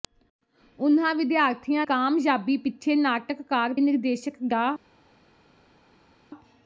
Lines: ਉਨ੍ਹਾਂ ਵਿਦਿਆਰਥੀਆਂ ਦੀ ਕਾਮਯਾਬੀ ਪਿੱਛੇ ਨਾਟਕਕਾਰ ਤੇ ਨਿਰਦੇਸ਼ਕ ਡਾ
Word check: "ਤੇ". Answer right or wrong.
wrong